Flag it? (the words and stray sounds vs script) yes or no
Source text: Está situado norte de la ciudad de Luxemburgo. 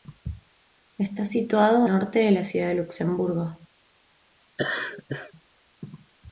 yes